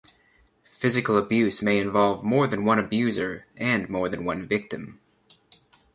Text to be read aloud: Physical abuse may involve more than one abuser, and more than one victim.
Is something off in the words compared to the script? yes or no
no